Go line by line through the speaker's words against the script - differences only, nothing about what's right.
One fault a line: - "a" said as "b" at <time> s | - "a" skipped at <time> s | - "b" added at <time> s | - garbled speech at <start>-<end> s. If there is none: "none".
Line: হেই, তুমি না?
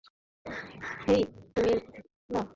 none